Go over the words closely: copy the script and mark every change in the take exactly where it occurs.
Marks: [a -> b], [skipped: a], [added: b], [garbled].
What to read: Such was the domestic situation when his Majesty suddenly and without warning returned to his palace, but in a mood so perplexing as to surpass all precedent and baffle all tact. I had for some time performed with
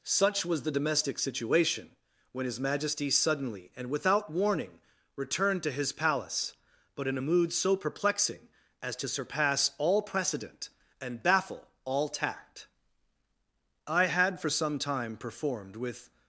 Such was the domestic situation when his Majesty suddenly and without warning returned to his palace, but in a mood so perplexing as to surpass all precedent and baffle all tact. I had for some time performed with